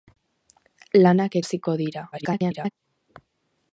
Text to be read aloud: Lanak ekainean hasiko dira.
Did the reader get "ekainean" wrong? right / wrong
wrong